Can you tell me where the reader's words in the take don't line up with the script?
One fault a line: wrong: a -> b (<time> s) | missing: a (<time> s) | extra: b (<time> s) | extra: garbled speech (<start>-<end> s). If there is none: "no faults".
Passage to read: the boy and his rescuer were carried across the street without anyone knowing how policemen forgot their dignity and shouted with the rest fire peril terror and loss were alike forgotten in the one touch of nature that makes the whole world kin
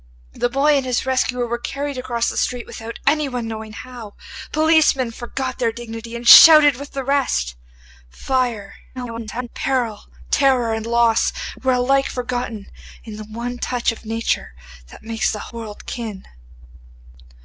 extra: garbled speech (9.0-9.5 s)
missing: whole (15.4 s)